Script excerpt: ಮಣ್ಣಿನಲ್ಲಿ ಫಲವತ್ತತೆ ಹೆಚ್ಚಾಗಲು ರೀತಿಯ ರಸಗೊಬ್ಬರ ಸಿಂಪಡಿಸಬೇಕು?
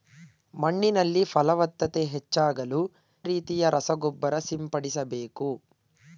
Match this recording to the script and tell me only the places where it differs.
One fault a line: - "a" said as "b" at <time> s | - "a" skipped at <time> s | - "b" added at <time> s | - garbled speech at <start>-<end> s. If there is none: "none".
none